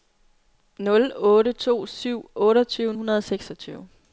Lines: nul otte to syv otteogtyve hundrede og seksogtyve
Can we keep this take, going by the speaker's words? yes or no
yes